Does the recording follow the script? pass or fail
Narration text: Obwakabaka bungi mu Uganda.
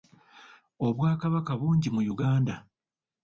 pass